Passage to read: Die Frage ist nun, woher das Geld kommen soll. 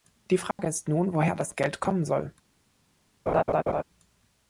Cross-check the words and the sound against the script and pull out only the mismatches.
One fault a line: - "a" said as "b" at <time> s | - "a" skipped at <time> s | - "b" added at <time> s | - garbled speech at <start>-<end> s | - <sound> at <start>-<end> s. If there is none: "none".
- dropout at 0.5-0.6 s
- laugh at 3.3-3.8 s